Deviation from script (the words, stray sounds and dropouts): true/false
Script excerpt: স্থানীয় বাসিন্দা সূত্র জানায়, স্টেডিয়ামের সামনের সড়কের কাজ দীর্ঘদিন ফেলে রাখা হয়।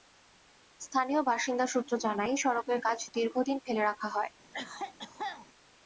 true